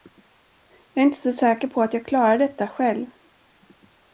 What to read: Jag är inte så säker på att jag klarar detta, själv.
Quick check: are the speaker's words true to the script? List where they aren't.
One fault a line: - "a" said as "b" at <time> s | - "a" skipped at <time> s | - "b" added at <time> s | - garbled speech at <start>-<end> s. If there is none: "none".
none